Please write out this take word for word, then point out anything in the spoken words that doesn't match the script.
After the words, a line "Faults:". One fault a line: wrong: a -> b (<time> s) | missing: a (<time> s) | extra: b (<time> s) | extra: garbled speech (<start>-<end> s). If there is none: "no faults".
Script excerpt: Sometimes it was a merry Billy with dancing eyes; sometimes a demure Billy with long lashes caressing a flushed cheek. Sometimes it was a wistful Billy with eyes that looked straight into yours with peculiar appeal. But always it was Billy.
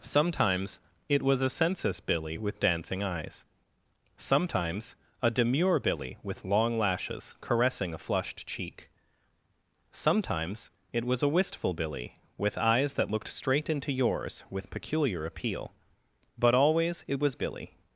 Sometimes it was a census Billy with dancing eyes; sometimes a demure Billy with long lashes caressing a flushed cheek. Sometimes it was a wistful Billy with eyes that looked straight into yours with peculiar appeal. But always it was Billy.
Faults:
wrong: merry -> census (1.5 s)